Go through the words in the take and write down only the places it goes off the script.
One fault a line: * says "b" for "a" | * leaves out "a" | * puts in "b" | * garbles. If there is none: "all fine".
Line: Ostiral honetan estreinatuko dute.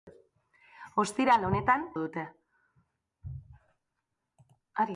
* leaves out "estreinatuko"